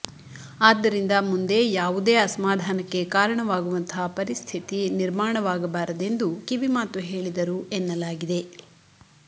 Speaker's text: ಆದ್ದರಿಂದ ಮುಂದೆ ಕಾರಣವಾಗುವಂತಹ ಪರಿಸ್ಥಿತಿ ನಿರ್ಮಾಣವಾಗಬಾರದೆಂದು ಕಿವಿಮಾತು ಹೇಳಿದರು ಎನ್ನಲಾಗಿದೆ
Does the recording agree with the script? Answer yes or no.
no